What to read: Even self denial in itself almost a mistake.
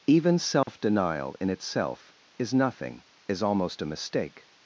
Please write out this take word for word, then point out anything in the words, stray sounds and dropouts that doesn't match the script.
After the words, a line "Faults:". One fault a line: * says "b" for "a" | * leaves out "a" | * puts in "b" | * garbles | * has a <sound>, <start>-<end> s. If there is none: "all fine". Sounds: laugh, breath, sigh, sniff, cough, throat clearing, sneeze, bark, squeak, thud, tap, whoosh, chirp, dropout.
Even self denial in itself is nothing, is almost a mistake.
Faults:
* has a dropout, 0.6-0.7 s
* puts in "is nothing is"